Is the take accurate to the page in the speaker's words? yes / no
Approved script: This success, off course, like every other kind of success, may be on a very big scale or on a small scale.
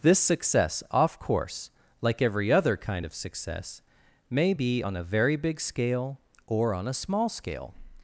yes